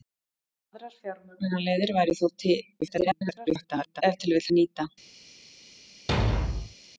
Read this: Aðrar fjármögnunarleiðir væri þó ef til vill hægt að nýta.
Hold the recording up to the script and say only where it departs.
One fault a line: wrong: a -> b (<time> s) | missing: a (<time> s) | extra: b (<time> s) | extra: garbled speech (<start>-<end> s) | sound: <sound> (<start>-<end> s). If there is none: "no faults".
extra: garbled speech (2.8-4.0 s)
missing: hægt (4.5 s)
sound: thud (6.1-6.7 s)